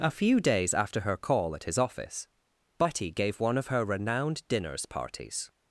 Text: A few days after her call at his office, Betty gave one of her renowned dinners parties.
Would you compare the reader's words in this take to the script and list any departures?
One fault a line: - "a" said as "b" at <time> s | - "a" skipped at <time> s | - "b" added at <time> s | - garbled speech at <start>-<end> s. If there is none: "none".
none